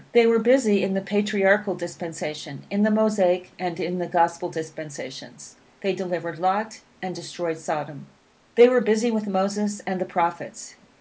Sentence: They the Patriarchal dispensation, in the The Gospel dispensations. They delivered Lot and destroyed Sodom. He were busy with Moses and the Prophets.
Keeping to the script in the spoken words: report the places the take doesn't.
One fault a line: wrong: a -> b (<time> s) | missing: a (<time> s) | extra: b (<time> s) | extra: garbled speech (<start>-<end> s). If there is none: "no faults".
extra: were busy in (0.2 s)
extra: Mosaic and in (2.9 s)
wrong: He -> They (8.5 s)